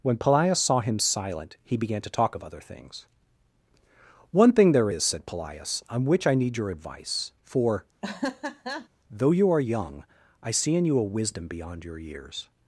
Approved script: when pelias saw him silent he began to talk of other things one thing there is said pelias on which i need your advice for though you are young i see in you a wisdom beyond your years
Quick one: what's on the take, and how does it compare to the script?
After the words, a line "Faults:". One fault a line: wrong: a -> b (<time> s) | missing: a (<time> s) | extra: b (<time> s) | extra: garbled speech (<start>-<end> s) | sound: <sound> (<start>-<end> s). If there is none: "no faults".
when pelias saw him silent he began to talk of other things one thing there is said pelias on which i need your advice for though you are young i see in you a wisdom beyond your years
Faults:
sound: laugh (8.0-8.9 s)